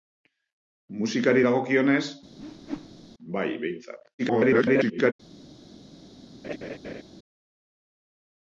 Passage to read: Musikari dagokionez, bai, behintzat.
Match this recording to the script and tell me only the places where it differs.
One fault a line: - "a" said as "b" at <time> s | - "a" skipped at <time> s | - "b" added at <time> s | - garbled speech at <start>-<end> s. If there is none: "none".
- garbled speech at 4.2-5.1 s